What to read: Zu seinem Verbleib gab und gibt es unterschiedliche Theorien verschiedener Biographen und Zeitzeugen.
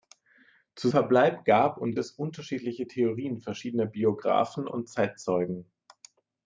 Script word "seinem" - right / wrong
wrong